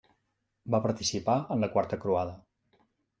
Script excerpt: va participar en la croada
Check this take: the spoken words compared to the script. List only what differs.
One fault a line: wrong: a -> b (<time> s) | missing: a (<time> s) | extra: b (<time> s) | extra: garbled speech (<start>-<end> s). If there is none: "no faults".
extra: quarta (1.8 s)